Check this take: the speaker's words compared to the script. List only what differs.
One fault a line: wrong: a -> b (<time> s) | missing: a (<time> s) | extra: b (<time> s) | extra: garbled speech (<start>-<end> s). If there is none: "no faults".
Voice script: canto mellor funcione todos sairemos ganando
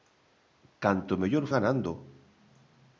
missing: funcione todos sairemos (1.4 s)